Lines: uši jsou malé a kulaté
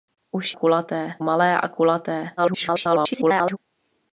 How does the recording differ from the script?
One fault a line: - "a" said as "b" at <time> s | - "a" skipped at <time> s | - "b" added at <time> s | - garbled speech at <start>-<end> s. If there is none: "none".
- "jsou" said as "kulaté" at 0.5 s
- garbled speech at 2.4-3.6 s